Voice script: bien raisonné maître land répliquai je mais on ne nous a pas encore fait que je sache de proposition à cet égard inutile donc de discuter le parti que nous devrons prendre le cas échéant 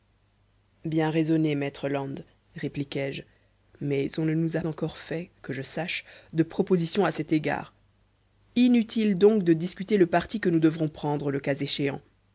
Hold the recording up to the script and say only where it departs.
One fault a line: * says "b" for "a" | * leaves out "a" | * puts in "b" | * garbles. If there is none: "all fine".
* leaves out "pas"